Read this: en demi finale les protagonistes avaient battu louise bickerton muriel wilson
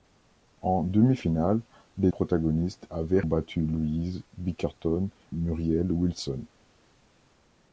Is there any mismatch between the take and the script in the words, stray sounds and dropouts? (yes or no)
no